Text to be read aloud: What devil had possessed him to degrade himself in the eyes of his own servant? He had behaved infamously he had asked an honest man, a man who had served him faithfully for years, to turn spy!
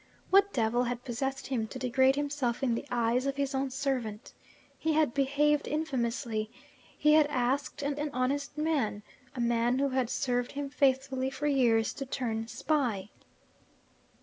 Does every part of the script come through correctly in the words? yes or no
no